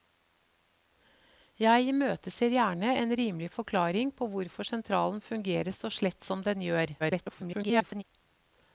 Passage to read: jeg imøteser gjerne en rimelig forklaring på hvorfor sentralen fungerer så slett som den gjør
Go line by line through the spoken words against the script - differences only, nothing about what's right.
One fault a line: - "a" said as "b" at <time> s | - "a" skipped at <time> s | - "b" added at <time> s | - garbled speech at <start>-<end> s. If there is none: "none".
- garbled speech at 7.0-8.0 s